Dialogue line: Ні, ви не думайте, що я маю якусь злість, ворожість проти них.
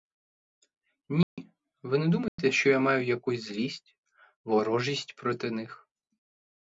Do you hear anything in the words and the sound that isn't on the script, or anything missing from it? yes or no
yes